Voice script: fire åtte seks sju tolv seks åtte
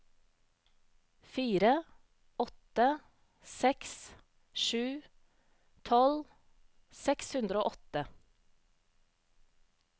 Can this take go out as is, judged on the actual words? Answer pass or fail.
fail